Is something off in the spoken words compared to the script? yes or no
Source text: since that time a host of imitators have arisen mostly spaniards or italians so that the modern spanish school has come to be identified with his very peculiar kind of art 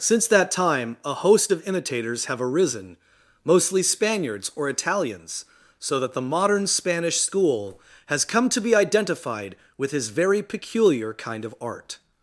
no